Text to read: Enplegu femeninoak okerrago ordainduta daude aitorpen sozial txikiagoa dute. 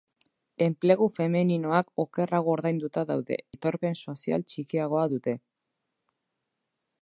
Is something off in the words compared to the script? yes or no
no